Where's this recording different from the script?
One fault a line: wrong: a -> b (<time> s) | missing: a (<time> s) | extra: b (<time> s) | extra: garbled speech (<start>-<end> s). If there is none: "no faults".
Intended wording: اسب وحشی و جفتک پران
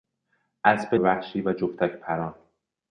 no faults